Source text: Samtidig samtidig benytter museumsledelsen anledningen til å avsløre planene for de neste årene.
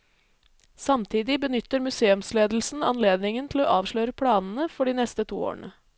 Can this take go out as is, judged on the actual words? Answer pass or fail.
fail